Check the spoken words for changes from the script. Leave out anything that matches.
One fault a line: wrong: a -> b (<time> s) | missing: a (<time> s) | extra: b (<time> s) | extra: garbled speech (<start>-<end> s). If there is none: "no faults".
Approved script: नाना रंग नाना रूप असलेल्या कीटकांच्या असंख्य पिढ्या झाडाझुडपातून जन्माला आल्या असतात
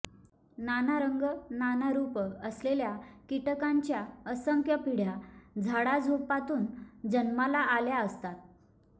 no faults